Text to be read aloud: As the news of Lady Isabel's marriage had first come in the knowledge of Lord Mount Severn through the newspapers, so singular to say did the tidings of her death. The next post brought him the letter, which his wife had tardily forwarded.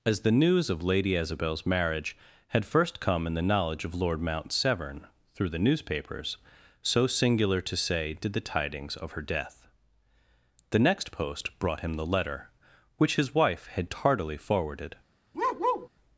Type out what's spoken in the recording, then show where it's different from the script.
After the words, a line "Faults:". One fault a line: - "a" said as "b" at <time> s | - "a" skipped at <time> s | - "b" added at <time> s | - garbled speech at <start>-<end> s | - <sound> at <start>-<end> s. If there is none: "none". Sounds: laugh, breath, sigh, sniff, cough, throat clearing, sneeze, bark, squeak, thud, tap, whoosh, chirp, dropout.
As the news of Lady Isabel's marriage had first come in the knowledge of Lord Mount Severn through the newspapers, so singular to say did the tidings of her death. The next post brought him the letter, which his wife had tardily forwarded.
Faults:
- bark at 15.3-15.9 s